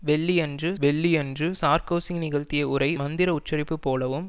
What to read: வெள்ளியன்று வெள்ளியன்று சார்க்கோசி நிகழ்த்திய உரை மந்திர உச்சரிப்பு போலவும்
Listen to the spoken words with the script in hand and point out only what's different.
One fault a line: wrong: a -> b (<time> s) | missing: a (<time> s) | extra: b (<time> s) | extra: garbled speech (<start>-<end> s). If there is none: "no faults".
no faults